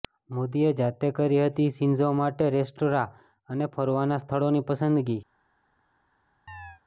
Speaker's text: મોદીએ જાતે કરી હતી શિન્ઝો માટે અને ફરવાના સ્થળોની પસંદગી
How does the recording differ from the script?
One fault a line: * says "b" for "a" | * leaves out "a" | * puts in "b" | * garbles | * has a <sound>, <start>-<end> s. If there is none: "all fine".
* puts in "રેસ્ટોરાં"
* has a chirp, 6.5-6.8 s